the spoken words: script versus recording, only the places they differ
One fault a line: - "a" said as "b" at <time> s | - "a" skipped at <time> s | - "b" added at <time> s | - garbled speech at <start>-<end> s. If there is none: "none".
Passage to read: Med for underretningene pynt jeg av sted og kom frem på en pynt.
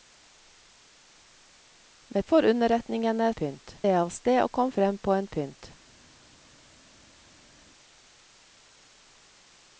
none